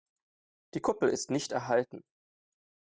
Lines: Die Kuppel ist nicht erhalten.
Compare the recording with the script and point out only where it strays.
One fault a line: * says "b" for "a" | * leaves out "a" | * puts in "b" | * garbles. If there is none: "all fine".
all fine